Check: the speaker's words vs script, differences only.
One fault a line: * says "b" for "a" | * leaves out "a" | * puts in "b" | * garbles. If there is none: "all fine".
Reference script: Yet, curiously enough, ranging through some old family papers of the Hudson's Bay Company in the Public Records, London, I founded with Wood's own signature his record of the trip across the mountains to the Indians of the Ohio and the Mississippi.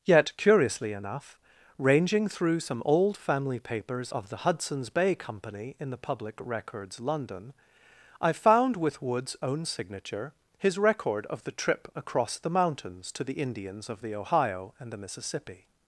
* says "found" for "founded"